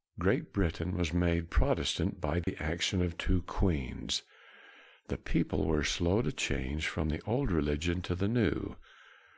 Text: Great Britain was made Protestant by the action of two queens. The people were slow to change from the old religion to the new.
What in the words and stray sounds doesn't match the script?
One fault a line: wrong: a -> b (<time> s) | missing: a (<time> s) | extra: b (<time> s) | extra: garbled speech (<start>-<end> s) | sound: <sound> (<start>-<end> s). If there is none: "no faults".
sound: dropout (2.4-2.5 s)